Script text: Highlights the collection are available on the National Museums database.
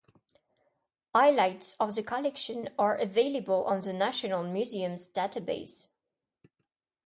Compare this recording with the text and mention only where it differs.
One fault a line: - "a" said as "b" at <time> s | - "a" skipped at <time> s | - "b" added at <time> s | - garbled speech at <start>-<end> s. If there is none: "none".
- "of" added at 1.8 s